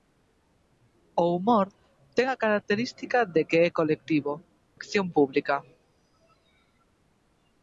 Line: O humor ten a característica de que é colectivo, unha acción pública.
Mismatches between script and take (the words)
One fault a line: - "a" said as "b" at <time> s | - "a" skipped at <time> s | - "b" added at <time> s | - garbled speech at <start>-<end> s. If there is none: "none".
- "unha" skipped at 4.3 s